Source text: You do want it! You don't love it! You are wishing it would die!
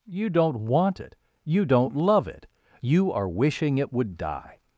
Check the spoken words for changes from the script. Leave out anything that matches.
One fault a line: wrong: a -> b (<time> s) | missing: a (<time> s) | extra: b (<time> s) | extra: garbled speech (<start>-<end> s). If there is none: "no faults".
wrong: do -> don't (0.3 s)